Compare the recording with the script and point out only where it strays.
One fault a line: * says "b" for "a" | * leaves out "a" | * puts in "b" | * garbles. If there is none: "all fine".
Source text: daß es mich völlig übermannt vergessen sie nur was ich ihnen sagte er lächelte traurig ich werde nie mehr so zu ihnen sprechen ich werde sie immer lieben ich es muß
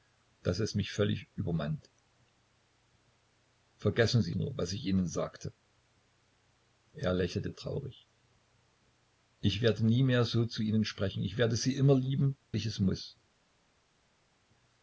all fine